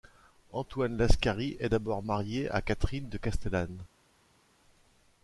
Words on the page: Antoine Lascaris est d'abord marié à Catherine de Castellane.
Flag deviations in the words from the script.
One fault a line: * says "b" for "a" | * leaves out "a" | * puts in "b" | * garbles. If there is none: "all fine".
all fine